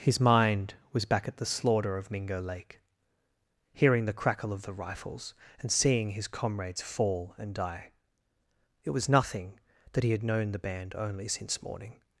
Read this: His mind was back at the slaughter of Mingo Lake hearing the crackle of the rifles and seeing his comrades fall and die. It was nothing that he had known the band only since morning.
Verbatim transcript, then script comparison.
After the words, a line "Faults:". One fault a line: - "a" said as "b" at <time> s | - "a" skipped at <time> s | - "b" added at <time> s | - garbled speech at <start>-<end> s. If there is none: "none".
His mind was back at the slaughter of Mingo Lake hearing the crackle of the rifles and seeing his comrades fall and die. It was nothing that he had known the band only since morning.
Faults:
none